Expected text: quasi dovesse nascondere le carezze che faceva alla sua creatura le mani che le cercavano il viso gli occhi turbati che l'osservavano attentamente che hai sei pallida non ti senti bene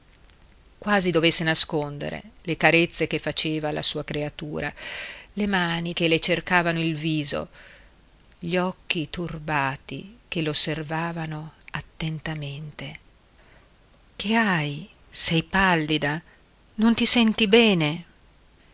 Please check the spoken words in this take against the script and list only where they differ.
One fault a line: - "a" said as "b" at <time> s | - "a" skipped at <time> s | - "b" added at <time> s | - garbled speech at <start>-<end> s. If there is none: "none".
none